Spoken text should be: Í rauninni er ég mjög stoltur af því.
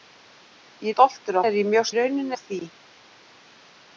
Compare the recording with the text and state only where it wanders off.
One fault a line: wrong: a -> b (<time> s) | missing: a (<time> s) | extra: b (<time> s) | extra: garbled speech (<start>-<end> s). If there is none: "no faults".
wrong: rauninni -> stoltur (0.9 s)
wrong: stoltur -> rauninni (2.0 s)